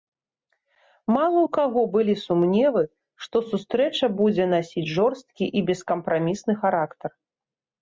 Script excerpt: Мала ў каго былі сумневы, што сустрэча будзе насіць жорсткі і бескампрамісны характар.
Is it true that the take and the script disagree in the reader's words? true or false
false